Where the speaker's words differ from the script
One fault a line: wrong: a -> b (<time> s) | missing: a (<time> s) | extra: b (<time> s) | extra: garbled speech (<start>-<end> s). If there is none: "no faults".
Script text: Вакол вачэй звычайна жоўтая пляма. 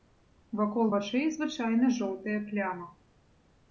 no faults